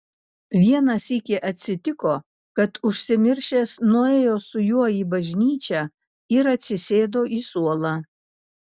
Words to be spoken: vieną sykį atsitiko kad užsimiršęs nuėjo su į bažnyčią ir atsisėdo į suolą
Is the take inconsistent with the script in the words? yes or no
yes